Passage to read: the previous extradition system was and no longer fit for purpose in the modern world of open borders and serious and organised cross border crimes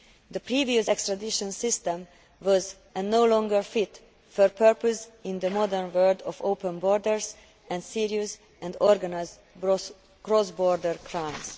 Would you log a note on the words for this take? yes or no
no